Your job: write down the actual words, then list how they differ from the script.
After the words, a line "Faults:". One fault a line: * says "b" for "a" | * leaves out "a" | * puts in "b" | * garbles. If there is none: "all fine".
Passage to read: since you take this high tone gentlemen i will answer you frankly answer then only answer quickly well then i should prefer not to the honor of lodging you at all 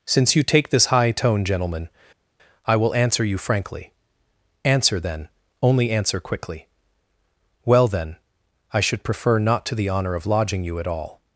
since you take this high tone gentlemen i will answer you frankly answer then only answer quickly well then i should prefer not to the honor of lodging you at all
Faults:
all fine